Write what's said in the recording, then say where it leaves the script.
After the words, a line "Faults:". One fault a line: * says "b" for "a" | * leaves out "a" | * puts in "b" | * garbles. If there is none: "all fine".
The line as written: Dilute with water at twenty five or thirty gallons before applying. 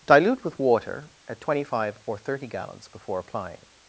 Dilute with water at twenty five or thirty gallons before applying.
Faults:
all fine